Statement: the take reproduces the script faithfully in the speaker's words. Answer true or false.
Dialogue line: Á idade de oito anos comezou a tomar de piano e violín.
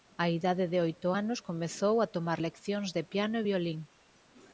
false